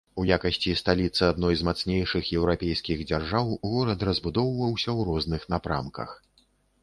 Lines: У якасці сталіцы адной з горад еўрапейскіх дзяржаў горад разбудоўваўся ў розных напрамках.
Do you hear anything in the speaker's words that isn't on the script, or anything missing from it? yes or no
yes